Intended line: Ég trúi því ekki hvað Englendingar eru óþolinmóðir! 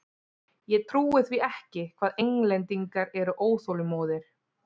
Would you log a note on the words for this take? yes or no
no